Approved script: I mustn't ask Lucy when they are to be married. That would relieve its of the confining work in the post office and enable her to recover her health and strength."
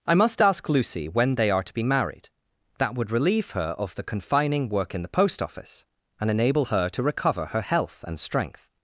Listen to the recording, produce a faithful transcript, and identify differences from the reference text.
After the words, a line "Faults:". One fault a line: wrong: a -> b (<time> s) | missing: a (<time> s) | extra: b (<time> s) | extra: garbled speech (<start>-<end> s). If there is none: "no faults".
I must ask Lucy when they are to be married. That would relieve her of the confining work in the post office and enable her to recover her health and strength."
Faults:
wrong: mustn't -> must (0.1 s)
wrong: its -> her (3.5 s)